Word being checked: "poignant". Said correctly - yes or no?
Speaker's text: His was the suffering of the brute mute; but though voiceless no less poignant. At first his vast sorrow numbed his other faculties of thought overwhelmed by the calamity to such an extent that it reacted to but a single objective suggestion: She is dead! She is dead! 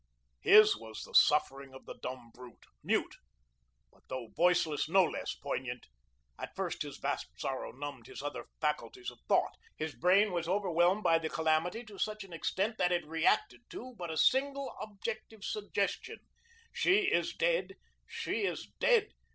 yes